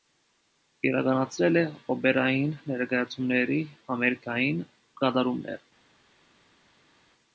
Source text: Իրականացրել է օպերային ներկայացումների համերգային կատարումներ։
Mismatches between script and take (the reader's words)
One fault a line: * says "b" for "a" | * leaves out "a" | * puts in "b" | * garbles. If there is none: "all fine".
all fine